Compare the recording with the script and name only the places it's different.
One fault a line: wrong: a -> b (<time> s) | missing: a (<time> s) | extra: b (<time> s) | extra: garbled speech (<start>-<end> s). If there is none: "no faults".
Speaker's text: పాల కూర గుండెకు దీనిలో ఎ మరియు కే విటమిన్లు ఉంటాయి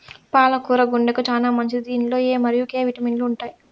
extra: చానా మంచిది (1.3 s)